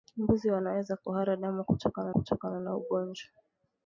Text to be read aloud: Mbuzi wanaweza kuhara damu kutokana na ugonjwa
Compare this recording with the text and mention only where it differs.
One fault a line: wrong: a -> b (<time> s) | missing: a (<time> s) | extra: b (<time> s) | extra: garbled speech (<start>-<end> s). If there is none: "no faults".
extra: kutokana (2.1 s)